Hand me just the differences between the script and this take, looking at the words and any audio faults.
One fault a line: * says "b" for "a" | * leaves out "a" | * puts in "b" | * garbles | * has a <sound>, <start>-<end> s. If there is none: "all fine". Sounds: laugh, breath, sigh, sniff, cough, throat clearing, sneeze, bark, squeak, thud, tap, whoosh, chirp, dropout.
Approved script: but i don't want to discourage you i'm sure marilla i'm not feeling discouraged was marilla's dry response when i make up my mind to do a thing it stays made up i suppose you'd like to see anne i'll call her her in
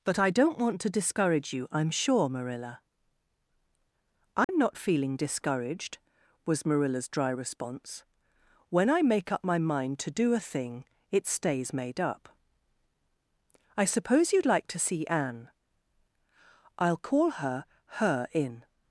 * has a dropout, 4.4-4.5 s